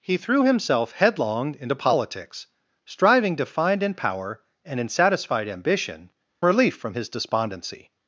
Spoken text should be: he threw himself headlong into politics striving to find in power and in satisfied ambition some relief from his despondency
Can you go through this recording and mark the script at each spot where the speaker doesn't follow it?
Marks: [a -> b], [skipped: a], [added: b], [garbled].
he threw himself headlong into politics striving to find in power and in satisfied ambition [skipped: some] relief from his despondency